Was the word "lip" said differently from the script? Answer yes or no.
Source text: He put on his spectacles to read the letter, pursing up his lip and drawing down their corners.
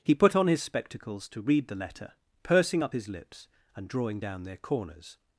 yes